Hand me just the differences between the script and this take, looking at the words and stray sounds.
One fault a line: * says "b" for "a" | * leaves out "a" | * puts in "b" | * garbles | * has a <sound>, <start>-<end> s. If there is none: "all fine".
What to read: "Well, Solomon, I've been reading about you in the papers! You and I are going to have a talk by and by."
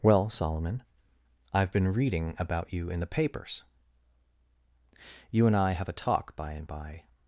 * leaves out "are going to"